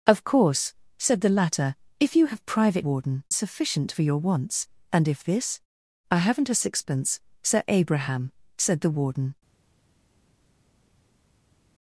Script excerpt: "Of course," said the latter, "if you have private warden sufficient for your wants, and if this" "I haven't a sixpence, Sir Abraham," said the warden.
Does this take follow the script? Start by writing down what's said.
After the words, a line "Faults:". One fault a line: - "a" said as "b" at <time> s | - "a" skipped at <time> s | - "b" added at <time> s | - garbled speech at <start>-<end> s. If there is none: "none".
"Of course," said the latter, "if you have private warden sufficient for your wants, and if this" "I haven't a sixpence, Sir Abraham," said the warden.
Faults:
none